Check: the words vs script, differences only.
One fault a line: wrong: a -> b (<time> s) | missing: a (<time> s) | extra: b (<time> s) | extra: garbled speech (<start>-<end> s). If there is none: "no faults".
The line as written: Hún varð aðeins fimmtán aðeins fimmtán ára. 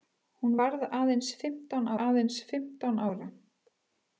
no faults